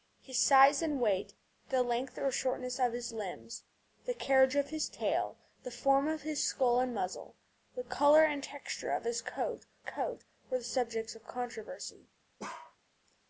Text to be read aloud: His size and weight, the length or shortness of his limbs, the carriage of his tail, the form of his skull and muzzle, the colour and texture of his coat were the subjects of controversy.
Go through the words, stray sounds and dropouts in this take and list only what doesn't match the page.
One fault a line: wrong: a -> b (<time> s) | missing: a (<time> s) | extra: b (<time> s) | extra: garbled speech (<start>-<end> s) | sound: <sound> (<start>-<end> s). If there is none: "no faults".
extra: coat (9.8 s)
sound: bark (12.4-12.8 s)